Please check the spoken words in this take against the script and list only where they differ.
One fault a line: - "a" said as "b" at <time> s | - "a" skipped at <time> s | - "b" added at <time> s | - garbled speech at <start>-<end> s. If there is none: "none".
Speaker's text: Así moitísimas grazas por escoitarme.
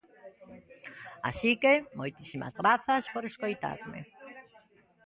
- "que" added at 1.6 s